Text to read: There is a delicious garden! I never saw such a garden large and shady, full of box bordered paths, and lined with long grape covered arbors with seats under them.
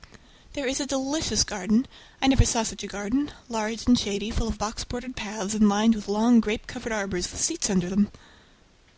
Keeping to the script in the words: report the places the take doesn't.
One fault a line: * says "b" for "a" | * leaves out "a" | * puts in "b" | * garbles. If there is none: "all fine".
all fine